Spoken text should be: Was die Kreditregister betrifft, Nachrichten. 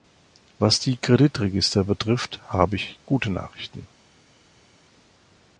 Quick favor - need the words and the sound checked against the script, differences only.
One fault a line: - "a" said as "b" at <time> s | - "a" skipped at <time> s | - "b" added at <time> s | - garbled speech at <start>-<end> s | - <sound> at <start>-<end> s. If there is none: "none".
- "habe ich gute" added at 2.5 s